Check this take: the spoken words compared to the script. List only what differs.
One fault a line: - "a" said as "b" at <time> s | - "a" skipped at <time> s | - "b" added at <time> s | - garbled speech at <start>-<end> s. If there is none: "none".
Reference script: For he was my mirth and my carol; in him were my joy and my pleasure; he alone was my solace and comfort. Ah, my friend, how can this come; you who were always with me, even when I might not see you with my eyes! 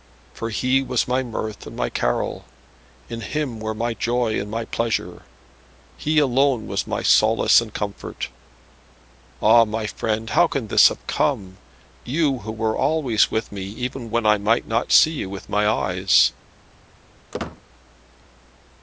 - "have" added at 10.9 s